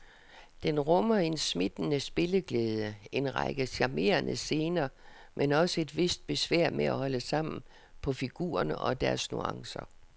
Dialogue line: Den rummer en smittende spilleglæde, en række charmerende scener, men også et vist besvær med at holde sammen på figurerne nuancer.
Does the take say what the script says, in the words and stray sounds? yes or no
no